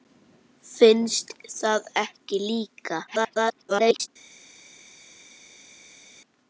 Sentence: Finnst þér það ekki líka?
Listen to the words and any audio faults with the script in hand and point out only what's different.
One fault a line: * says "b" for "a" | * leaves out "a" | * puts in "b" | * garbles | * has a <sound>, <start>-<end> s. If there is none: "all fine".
* leaves out "þér"
* garbles